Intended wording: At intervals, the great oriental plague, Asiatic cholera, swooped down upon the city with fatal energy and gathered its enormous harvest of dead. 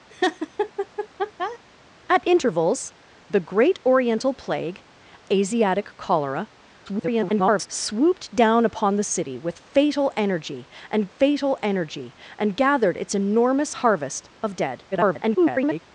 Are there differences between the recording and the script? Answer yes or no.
yes